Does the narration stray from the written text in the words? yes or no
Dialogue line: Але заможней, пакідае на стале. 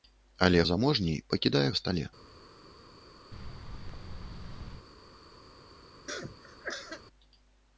no